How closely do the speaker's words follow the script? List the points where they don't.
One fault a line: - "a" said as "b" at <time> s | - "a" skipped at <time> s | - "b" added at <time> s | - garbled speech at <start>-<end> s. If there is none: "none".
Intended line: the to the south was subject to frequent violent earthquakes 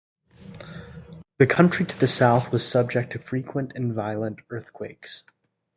- "country" added at 1.4 s
- "and" added at 3.7 s